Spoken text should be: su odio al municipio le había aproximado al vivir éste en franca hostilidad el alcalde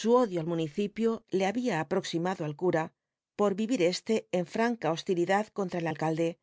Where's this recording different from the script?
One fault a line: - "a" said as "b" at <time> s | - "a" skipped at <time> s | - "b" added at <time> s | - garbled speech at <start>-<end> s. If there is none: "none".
- "cura por" added at 2.5 s
- "contra" added at 5.5 s